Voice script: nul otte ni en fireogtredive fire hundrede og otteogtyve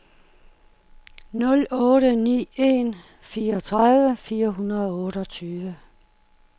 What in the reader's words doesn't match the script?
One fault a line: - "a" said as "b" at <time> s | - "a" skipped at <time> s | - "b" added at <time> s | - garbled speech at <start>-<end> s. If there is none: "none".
none